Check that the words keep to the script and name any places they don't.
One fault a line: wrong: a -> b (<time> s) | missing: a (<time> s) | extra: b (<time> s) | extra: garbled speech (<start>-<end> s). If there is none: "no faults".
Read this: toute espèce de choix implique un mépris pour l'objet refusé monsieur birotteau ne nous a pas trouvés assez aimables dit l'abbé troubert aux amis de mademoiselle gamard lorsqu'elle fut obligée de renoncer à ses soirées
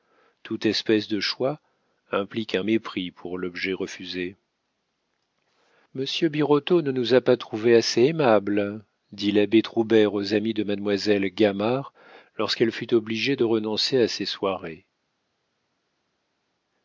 no faults